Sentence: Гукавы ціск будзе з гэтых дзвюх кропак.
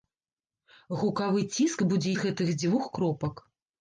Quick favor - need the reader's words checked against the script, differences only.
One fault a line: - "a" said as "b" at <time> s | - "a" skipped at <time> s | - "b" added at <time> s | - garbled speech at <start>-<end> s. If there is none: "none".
none